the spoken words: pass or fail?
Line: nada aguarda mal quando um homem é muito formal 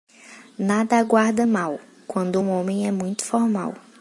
pass